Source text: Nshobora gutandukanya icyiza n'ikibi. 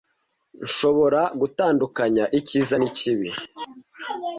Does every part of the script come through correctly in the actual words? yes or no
yes